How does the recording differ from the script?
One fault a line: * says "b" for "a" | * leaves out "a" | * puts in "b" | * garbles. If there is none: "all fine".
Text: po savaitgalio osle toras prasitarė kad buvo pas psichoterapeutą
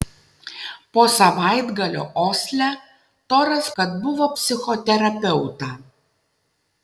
* leaves out "prasitarė"
* leaves out "pas"